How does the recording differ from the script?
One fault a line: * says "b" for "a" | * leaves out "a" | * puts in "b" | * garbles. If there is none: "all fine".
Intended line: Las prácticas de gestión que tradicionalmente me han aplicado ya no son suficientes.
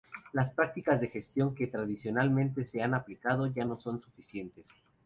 * says "se" for "me"